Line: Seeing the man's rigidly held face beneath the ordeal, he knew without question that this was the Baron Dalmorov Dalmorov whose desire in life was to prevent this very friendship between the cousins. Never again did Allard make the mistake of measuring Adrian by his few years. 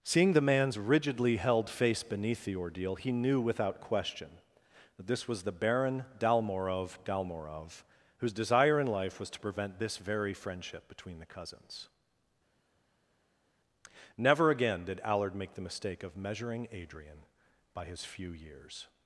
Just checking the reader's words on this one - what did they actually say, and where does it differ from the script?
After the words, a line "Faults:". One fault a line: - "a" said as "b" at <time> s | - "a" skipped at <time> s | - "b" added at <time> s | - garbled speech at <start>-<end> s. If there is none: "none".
Seeing the man's rigidly held face beneath the ordeal, he knew without question that this was the Baron Dalmorov Dalmorov whose desire in life was to prevent this very friendship between the cousins. Never again did Allard make the mistake of measuring Adrian by his few years.
Faults:
none